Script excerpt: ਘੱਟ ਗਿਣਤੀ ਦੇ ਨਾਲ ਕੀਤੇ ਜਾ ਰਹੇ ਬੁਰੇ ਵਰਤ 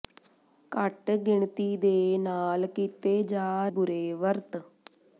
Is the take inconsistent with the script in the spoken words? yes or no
yes